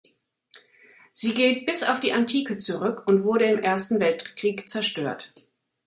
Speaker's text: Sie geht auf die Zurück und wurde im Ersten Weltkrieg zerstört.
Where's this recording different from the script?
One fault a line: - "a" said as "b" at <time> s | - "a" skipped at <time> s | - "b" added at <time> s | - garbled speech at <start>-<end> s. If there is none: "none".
- "bis" added at 1.7 s
- "Antike" added at 2.1 s